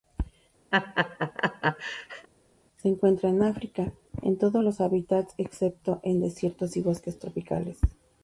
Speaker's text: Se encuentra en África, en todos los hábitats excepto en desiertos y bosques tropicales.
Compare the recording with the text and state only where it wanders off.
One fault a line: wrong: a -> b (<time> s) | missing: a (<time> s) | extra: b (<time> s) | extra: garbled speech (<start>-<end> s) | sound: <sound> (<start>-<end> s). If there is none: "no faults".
sound: laugh (0.7-2.3 s)